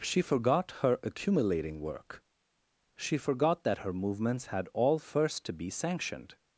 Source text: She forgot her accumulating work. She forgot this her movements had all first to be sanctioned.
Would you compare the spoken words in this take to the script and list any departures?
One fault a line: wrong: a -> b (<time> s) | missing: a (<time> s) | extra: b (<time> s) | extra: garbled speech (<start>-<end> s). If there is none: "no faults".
wrong: this -> that (3.6 s)